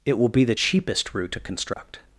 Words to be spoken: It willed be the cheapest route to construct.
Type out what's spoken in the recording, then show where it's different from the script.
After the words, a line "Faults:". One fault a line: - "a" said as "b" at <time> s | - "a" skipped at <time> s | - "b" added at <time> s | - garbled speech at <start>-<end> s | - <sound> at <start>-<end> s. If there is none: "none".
It will be the cheapest route to construct.
Faults:
- "willed" said as "will" at 0.2 s
- dropout at 1.7-1.8 s